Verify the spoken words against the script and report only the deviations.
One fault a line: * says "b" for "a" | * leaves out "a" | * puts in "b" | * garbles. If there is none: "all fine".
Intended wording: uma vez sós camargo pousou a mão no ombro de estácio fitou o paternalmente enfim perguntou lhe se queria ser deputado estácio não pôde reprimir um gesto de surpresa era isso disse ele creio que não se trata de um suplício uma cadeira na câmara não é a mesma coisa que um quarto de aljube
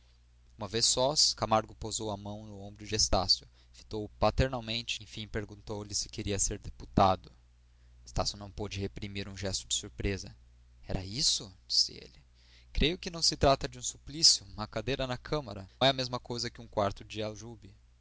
* leaves out "não"